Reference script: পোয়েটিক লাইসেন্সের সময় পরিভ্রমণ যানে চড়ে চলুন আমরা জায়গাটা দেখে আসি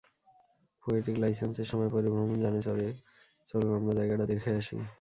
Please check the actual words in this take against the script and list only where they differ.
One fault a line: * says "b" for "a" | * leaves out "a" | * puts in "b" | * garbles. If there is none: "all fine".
all fine